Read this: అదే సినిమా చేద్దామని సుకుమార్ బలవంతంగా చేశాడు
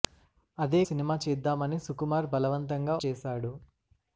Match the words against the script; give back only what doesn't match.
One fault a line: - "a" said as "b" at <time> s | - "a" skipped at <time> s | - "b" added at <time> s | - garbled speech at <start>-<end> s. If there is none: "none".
none